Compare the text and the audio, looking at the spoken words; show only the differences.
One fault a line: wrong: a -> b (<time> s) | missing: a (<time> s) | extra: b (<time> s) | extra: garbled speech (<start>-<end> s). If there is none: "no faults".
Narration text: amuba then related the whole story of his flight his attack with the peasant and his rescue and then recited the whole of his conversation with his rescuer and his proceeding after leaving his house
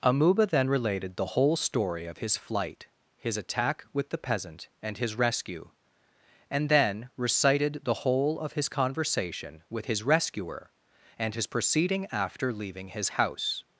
no faults